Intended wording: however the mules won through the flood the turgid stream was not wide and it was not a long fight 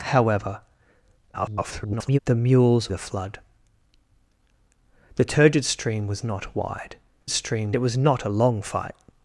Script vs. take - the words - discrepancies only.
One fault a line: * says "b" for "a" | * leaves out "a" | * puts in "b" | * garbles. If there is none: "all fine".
* garbles
* leaves out "won through"
* says "stream" for "and"